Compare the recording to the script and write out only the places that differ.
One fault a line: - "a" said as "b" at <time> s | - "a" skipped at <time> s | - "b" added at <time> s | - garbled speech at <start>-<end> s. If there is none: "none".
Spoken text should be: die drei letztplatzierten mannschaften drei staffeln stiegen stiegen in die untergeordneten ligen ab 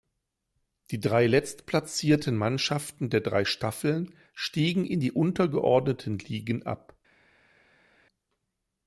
- "der" added at 3.1 s
- "stiegen" skipped at 4.8 s